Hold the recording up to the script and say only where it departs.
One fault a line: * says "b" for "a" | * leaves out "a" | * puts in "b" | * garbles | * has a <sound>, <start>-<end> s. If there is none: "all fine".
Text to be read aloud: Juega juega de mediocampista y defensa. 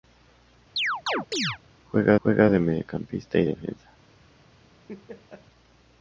* has a chirp, 0.8-1.6 s
* has a laugh, 4.9-5.4 s